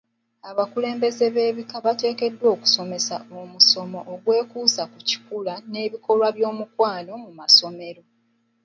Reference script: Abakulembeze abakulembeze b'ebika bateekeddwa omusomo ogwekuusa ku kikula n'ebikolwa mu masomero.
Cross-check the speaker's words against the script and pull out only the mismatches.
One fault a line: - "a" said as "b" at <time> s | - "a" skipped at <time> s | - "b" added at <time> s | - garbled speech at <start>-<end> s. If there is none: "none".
- "abakulembeze" skipped at 1.2 s
- "okusomesa" added at 2.5 s
- "by'omukwano" added at 6.4 s